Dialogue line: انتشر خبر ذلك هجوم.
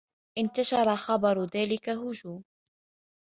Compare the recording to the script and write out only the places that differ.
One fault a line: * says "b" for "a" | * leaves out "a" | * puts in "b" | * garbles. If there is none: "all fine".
all fine